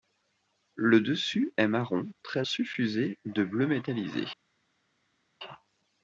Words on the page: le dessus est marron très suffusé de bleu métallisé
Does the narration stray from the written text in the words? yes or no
no